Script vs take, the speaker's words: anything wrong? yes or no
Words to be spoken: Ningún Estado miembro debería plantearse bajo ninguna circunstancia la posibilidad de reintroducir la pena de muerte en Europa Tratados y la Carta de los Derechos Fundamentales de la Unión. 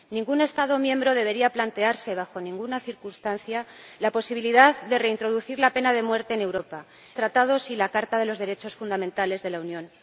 no